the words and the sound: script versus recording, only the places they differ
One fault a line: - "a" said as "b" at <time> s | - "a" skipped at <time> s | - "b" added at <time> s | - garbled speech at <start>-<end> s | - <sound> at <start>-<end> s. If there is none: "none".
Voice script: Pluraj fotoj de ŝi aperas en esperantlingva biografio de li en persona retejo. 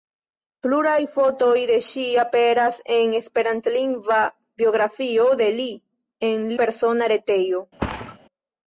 - thud at 7.8-8.2 s